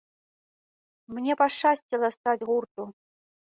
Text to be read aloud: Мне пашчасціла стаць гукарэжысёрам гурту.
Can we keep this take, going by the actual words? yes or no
no